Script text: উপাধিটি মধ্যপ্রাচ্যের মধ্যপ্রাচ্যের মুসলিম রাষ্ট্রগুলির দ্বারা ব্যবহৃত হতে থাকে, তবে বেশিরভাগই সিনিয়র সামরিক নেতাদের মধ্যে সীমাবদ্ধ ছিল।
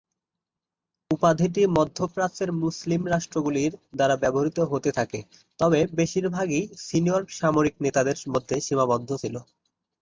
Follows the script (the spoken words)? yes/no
no